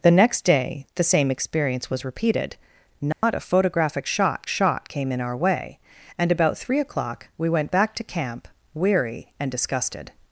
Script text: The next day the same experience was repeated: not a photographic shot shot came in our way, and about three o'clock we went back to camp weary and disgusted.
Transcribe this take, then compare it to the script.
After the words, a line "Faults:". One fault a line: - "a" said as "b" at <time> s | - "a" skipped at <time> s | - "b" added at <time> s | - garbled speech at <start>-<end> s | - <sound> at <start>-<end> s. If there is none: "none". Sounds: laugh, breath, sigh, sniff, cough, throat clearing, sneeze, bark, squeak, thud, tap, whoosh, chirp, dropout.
The next day the same experience was repeated: not a photographic shot shot came in our way, and about three o'clock we went back to camp weary and disgusted.
Faults:
- dropout at 3.1-3.2 s